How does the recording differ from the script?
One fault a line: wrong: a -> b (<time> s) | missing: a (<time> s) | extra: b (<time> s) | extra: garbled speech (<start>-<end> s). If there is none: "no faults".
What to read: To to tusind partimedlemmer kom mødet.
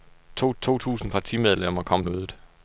no faults